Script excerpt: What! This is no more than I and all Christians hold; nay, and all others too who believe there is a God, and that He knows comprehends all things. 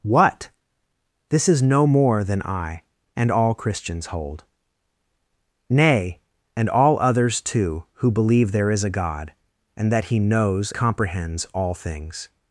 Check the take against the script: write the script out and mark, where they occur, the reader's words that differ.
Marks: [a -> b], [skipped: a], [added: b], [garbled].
What! This is no more than I and all Christians hold; nay, and all others too who believe there is a God, and that He knows comprehends all things.